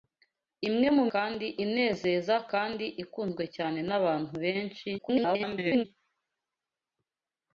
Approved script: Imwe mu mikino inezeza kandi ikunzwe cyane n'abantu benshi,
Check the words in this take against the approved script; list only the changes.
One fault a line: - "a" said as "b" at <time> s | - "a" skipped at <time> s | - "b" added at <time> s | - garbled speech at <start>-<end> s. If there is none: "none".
- "mikino" said as "kandi" at 1.1 s
- garbled speech at 5.0-5.8 s